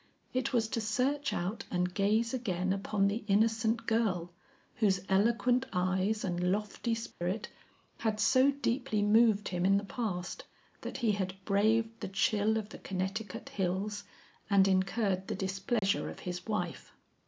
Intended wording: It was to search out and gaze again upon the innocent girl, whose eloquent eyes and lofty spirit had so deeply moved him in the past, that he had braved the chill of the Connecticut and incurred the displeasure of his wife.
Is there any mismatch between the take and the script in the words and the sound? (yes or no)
yes